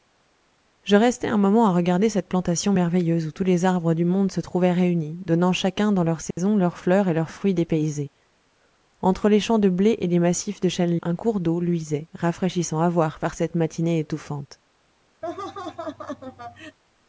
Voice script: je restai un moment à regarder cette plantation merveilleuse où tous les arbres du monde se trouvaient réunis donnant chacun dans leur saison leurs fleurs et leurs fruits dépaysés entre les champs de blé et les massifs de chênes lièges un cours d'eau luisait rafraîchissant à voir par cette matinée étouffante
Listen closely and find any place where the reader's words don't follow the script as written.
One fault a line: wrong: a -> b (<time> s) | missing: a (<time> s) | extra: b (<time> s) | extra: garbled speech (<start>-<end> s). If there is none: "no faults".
missing: lièges (11.0 s)